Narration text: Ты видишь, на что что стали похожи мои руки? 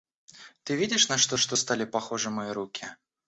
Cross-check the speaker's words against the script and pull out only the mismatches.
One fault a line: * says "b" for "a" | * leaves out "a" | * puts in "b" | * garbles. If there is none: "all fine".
all fine